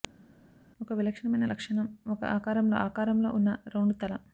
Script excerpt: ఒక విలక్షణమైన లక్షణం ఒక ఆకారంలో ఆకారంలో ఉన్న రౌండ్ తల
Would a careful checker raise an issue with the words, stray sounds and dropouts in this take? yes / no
no